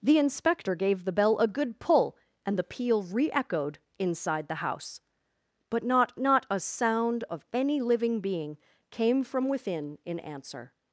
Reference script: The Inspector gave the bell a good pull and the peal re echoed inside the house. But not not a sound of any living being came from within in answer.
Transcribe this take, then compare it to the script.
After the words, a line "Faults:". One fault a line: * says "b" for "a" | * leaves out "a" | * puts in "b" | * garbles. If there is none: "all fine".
The Inspector gave the bell a good pull and the peal re echoed inside the house. But not not a sound of any living being came from within in answer.
Faults:
all fine